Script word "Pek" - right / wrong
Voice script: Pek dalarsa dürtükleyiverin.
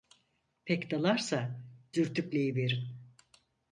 right